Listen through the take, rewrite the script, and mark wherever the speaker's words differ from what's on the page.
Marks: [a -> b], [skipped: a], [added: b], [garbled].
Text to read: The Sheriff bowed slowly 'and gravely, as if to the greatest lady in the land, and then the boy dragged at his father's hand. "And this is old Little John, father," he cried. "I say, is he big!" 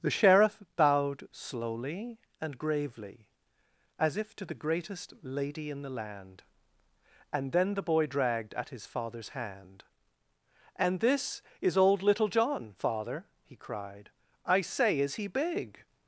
The Sheriff bowed slowly 'and gravely, as if to the greatest lady in the land, and then the boy dragged at his father's hand. "And this is old Little John, father," he cried. "I say, is he big!"